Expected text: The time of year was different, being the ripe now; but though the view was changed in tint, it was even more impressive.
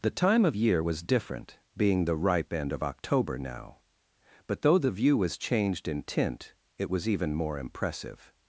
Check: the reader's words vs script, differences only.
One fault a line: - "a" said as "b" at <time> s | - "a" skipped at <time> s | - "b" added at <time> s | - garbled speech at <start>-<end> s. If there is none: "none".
- "end of October" added at 2.5 s